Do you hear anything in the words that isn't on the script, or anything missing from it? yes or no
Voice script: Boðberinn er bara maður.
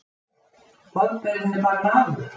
no